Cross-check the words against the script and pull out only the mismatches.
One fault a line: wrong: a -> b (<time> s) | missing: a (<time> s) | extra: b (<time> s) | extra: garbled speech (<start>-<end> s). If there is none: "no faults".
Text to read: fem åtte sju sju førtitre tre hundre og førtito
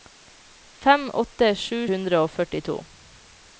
missing: sju førtitre tre (1.8 s)